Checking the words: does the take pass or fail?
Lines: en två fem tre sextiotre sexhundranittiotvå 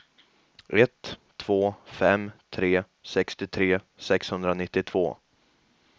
fail